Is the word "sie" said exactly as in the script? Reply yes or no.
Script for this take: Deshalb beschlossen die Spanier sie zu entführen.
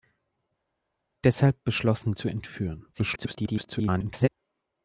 no